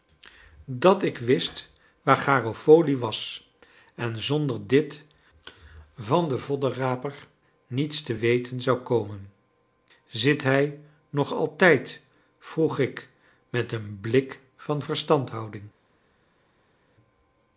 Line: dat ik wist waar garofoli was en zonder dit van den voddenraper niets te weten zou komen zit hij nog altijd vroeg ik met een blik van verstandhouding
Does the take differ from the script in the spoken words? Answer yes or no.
no